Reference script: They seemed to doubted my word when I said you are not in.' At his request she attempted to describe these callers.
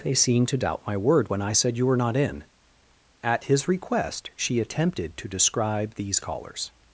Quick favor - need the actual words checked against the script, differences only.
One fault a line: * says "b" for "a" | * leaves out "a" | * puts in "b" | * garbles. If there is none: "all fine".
* says "doubt" for "doubted"
* says "were" for "are"